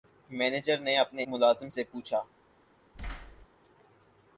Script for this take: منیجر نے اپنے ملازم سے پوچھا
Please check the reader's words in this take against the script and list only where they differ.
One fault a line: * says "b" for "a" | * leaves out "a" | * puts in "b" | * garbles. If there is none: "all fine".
all fine